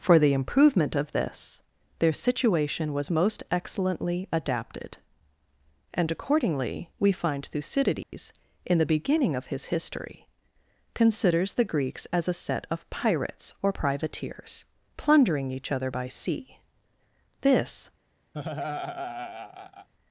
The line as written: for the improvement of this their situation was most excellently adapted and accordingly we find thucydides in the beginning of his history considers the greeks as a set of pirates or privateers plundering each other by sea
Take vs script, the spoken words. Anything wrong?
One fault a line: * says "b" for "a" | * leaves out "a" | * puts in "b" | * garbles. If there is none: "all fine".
* puts in "this"